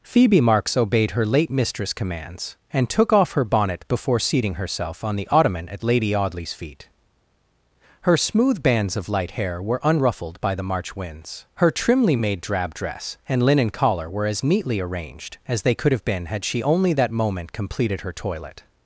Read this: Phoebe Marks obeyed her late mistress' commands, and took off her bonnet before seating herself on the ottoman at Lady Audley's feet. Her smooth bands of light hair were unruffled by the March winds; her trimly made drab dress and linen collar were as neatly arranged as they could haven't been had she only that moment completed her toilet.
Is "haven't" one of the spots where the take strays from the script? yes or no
yes